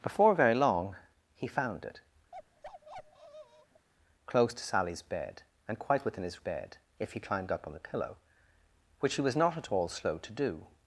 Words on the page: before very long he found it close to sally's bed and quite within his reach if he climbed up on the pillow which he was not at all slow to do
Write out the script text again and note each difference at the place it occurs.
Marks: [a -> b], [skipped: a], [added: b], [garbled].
before very long he found it close to sally's bed and quite within his [reach -> bed] if he climbed up on the pillow which he was not at all slow to do